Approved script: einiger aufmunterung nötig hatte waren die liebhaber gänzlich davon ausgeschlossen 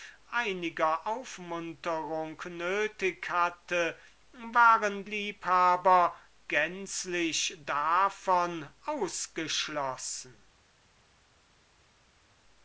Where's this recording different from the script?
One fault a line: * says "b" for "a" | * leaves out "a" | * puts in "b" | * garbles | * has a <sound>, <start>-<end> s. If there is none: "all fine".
* leaves out "die"